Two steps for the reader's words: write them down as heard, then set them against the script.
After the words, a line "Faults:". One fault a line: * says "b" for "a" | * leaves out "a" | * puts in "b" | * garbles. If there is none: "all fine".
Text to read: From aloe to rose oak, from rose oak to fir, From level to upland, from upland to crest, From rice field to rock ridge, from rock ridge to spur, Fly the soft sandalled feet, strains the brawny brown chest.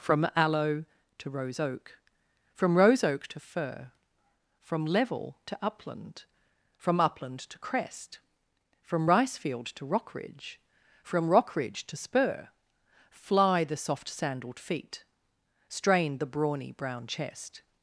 From aloe to rose oak, from rose oak to fir, From level to upland, from upland to crest, From rice field to rock ridge, from rock ridge to spur, Fly the soft sandalled feet, strain the brawny brown chest.
Faults:
* says "strain" for "strains"